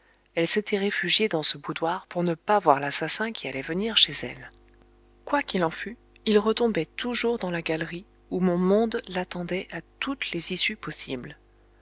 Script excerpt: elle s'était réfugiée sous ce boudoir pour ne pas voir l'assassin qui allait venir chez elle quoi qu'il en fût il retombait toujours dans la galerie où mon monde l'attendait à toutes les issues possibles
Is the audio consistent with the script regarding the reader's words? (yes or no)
no